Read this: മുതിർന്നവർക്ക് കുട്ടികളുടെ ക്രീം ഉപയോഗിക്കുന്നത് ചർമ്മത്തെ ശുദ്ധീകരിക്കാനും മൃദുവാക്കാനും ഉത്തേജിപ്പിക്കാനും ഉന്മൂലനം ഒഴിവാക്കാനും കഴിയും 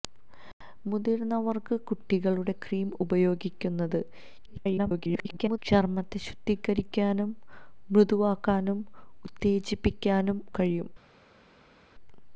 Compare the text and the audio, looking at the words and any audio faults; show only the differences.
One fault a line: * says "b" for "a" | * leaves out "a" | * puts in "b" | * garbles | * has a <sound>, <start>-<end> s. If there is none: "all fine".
* garbles
* leaves out "ഉന്മൂലനം ഒഴിവാക്കാനും"